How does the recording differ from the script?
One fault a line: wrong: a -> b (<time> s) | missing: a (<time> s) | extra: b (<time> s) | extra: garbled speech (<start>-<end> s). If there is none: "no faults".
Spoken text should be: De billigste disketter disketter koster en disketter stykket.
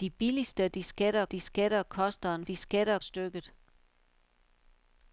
no faults